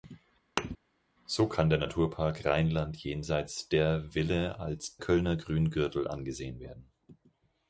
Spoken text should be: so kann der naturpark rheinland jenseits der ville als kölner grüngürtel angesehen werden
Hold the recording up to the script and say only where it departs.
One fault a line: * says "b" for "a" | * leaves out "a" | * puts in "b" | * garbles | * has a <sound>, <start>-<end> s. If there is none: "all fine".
* has a thud, 0.6-0.8 s